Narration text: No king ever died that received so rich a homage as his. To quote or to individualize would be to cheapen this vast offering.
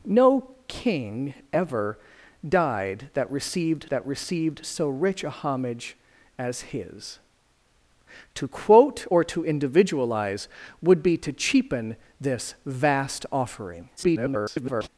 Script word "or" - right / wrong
right